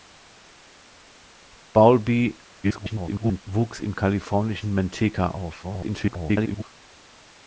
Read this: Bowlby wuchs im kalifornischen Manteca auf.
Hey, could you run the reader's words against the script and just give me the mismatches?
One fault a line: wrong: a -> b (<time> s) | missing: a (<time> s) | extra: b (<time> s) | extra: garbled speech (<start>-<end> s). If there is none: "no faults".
extra: garbled speech (2.6-3.4 s)
extra: garbled speech (5.6-6.6 s)